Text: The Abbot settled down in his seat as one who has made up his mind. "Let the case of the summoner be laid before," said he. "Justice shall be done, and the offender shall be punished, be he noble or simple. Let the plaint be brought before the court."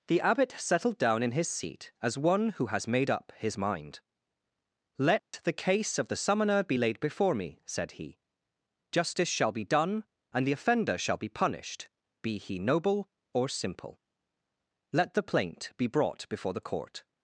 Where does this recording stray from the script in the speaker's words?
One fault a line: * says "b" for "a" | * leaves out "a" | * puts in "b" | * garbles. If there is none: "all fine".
* puts in "me"